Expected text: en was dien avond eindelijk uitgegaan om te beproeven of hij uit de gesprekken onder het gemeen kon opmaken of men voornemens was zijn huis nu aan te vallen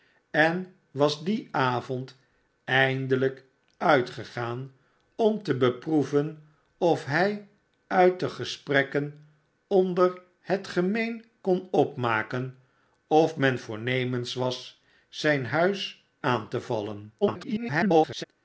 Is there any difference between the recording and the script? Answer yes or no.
yes